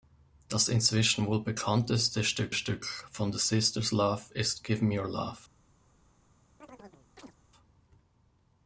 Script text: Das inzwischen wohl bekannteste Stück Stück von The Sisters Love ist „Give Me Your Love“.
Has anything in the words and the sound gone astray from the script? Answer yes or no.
yes